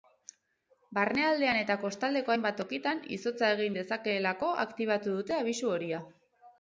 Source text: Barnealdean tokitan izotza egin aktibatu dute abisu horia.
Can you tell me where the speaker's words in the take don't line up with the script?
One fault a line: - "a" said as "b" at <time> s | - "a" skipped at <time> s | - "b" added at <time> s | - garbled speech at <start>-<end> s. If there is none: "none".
- "eta kostaldeko hainbat" added at 1.6 s
- "dezakeelako" added at 3.8 s